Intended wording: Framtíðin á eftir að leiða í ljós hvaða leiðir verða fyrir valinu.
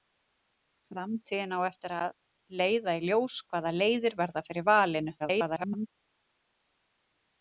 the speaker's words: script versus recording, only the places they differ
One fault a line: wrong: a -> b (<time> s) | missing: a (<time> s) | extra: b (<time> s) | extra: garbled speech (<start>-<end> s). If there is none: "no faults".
extra: garbled speech (5.2-5.9 s)